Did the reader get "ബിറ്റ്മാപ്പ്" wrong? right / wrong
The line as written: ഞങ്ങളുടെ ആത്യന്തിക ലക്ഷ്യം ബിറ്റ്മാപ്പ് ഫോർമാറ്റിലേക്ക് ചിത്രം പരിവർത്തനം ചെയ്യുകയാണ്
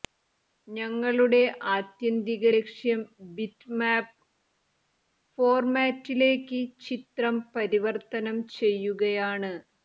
right